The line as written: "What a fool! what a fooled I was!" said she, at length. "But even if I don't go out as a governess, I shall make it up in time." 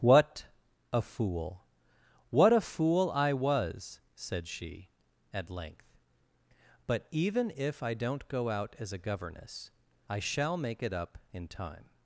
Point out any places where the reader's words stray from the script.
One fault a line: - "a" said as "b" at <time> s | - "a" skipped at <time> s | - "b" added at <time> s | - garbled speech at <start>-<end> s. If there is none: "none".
- "fooled" said as "fool" at 2.6 s